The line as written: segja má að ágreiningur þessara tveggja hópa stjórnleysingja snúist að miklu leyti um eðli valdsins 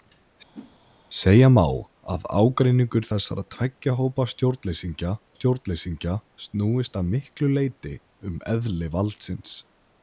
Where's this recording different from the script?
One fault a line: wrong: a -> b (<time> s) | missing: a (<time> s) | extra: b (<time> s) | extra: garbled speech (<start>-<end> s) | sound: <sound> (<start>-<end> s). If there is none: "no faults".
sound: whoosh (0.5-0.8 s)
extra: stjórnleysingja (5.3 s)